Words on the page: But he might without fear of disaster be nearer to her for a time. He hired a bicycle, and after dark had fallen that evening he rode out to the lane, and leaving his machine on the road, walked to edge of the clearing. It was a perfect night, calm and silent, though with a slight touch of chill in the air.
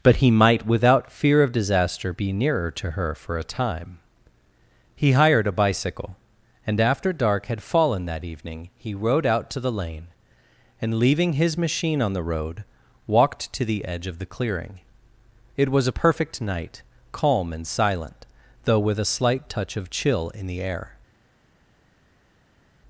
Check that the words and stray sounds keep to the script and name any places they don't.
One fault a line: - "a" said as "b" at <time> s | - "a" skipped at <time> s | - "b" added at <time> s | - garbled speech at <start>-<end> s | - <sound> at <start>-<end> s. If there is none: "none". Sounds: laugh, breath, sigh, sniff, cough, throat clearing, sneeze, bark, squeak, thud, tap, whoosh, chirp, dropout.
- "the" added at 13.6 s